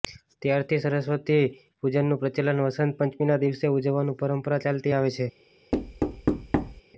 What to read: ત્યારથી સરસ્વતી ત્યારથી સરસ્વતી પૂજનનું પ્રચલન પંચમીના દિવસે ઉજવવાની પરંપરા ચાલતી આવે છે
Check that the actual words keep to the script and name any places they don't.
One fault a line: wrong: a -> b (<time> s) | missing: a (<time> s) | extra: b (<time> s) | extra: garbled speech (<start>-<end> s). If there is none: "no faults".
missing: ત્યારથી સરસ્વતી (1.4 s)
extra: વસંત (2.6 s)